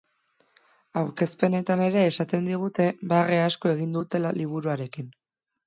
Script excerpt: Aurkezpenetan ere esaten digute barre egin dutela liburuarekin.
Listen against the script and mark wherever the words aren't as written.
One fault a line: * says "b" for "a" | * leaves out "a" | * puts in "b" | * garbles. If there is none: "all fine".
* puts in "asko"